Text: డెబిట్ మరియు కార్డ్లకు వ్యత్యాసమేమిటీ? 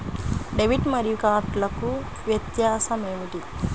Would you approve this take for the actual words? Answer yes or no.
yes